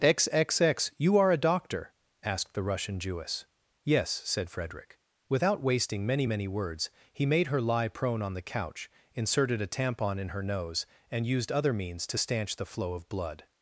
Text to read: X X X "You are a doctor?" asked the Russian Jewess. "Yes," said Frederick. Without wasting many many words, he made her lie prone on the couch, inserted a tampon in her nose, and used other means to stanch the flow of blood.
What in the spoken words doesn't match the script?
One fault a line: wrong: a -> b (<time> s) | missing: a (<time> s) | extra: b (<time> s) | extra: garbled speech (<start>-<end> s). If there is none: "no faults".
no faults